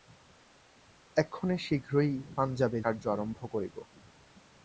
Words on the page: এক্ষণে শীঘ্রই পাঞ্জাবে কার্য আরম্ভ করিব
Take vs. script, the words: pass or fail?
pass